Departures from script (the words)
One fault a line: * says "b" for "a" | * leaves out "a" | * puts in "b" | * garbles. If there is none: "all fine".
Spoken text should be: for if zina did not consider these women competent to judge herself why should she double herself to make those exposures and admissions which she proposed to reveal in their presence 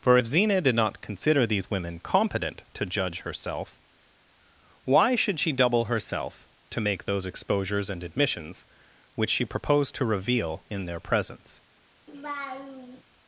all fine